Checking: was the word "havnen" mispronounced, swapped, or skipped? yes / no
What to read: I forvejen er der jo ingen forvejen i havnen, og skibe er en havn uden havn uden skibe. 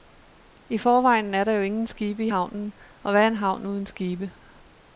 no